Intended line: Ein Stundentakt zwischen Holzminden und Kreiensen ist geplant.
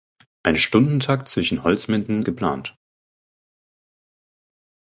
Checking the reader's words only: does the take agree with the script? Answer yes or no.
no